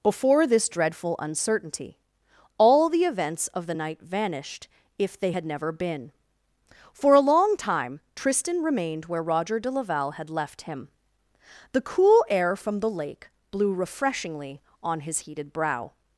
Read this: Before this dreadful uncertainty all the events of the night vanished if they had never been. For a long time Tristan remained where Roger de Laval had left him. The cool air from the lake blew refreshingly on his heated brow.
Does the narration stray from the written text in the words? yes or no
no